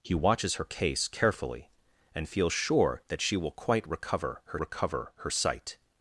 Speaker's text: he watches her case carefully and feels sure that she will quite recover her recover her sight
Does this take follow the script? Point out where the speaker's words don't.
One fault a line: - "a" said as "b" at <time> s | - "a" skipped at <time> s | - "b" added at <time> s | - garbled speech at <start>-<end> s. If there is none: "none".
none